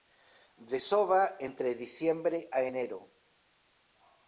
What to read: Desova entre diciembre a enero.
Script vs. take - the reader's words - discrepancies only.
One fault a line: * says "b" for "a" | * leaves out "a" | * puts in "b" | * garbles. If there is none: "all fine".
all fine